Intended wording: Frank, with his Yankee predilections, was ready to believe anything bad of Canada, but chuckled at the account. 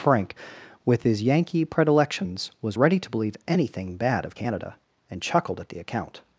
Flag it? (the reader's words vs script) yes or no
yes